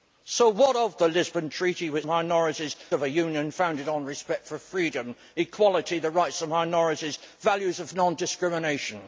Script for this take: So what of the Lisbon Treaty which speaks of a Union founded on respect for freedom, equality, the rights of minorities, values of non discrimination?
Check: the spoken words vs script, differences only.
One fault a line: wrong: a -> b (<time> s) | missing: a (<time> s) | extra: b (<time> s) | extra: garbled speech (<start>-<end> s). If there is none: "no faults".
wrong: speaks -> minorities (2.1 s)